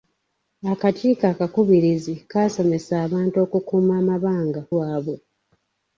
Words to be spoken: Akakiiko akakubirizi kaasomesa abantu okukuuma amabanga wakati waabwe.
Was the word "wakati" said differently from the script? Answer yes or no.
yes